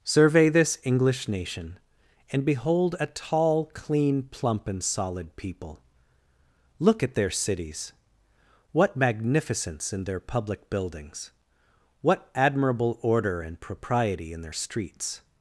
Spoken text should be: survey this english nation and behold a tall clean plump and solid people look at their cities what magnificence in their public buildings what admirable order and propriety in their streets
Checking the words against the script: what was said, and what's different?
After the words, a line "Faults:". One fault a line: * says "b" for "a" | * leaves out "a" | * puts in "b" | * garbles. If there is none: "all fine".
survey this english nation and behold a tall clean plump and solid people look at their cities what magnificence in their public buildings what admirable order and propriety in their streets
Faults:
all fine